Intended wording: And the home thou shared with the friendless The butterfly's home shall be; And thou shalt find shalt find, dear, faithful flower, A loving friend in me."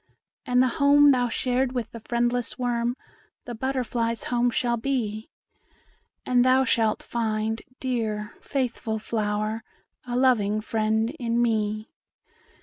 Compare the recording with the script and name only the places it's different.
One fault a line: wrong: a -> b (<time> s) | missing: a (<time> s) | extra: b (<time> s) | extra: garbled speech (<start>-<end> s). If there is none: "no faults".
extra: worm (2.6 s)
missing: shalt find (7.6 s)